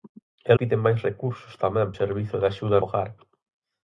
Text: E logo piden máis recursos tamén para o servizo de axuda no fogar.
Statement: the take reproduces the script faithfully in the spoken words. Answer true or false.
false